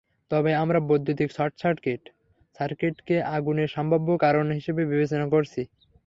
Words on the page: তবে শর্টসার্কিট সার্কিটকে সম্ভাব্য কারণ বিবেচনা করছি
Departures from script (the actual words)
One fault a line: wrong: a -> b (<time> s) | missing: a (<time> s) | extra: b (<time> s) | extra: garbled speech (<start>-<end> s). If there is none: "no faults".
extra: আমরা বৈদ্যুতিক (0.6 s)
extra: আগুনের (3.4 s)
extra: হিসেবে (4.5 s)